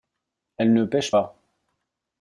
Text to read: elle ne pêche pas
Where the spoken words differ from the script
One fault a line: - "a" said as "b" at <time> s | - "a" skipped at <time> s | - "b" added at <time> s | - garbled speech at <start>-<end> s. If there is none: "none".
none